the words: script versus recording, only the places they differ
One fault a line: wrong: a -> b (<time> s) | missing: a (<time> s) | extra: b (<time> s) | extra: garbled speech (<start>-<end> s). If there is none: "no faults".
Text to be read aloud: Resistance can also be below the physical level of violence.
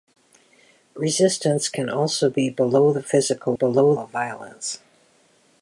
wrong: level -> below (3.5 s)